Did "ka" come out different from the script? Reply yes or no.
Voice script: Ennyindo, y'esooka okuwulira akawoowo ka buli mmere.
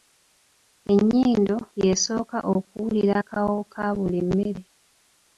no